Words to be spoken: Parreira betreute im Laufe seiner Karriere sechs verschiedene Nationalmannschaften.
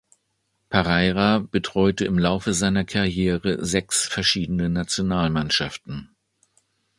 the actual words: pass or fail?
pass